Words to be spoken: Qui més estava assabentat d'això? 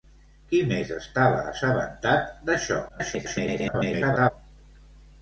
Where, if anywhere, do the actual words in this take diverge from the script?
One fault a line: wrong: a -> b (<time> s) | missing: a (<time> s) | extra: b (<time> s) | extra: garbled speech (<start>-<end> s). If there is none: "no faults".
extra: garbled speech (2.9-4.3 s)